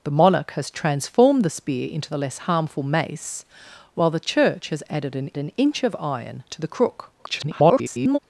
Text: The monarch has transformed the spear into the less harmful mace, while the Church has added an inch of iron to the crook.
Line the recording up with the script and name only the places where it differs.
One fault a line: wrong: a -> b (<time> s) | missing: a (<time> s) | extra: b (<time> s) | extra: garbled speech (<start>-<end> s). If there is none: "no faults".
extra: an (5.4 s)
extra: garbled speech (7.2-8.2 s)